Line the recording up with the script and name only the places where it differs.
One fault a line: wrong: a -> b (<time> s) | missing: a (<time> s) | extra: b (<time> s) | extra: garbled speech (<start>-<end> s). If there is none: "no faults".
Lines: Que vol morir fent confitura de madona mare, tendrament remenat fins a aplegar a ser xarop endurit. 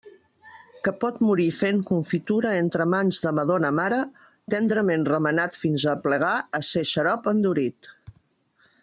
wrong: vol -> pot (1.0 s)
extra: entre mans (2.6 s)